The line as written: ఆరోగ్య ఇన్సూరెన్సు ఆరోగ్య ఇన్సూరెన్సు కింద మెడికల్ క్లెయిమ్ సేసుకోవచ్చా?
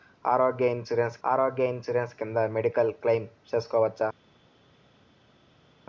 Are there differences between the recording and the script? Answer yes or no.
no